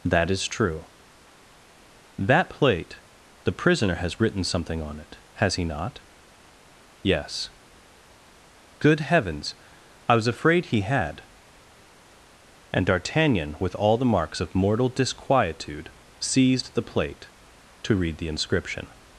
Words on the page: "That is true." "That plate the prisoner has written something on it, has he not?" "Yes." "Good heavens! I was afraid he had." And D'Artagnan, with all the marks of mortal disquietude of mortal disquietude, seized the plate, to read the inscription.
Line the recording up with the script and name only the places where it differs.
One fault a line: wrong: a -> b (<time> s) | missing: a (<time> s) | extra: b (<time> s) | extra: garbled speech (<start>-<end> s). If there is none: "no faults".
missing: of mortal disquietude (15.9 s)